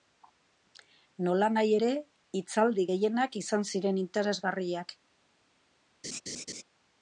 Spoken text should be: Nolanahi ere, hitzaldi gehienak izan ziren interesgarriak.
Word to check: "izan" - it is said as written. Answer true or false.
true